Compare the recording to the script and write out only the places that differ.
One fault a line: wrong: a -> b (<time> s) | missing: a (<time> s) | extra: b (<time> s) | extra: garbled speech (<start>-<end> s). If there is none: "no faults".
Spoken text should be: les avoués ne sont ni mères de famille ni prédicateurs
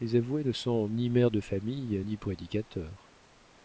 no faults